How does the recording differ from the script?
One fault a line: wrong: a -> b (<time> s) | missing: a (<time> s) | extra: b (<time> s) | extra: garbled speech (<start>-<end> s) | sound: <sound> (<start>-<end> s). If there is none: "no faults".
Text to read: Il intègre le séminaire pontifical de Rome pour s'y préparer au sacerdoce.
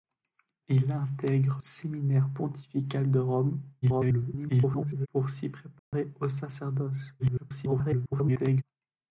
missing: le (1.6 s)
extra: garbled speech (3.8-5.1 s)
sound: dropout (5.8-5.9 s)
extra: garbled speech (7.2-8.6 s)